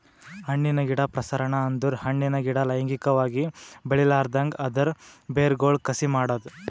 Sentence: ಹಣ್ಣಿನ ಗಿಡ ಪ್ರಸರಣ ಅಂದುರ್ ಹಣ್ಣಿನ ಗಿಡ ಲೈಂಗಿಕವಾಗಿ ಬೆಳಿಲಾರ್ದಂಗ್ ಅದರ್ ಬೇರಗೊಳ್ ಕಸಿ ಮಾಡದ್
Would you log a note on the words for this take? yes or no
no